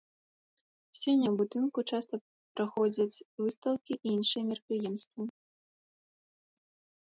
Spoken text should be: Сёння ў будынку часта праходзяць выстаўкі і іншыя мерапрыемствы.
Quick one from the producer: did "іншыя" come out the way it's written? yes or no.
yes